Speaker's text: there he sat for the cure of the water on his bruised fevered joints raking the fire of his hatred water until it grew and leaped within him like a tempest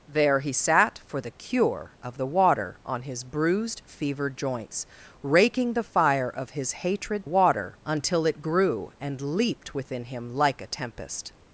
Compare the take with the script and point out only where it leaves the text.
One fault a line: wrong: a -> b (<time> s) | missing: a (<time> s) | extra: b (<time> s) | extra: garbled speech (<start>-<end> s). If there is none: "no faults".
no faults